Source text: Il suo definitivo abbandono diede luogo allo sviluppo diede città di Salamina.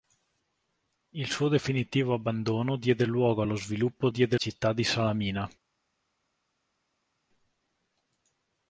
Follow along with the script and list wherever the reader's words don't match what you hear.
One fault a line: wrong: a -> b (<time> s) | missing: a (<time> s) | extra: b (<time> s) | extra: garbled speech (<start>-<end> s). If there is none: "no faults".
no faults